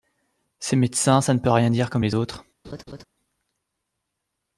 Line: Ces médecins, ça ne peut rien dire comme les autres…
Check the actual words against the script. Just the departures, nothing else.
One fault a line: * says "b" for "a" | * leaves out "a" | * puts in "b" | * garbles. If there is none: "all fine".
all fine